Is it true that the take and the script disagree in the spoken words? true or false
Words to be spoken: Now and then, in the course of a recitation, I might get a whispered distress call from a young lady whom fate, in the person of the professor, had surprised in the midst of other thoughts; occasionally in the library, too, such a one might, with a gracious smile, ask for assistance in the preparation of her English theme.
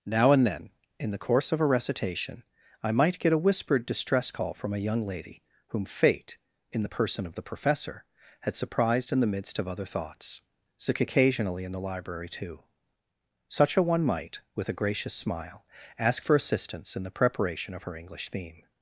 true